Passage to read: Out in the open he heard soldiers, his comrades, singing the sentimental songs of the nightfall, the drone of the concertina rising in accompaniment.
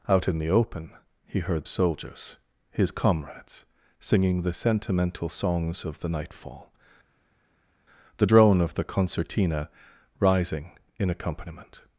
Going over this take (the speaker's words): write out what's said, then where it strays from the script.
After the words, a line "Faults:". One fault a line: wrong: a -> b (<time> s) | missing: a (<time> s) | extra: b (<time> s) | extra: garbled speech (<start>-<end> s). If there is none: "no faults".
Out in the open he heard soldiers, his comrades, singing the sentimental songs of the nightfall, the drone of the concertina rising in accompaniment.
Faults:
no faults